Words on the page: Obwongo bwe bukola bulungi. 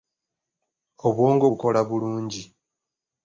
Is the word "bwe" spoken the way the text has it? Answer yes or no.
no